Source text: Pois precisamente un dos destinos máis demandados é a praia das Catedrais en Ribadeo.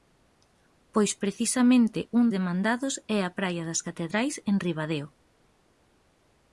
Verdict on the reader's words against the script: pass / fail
fail